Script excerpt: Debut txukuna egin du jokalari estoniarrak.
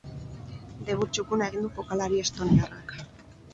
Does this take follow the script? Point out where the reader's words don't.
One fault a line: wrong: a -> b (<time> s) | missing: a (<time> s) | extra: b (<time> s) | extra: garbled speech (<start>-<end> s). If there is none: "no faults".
no faults